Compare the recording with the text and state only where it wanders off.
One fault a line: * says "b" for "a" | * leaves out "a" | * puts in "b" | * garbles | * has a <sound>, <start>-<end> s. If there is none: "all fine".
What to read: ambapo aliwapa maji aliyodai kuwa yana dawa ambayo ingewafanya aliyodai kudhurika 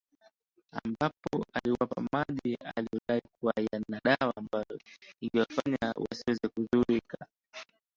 * has a dropout, 3.0-3.1 s
* says "wasiweze" for "aliyodai"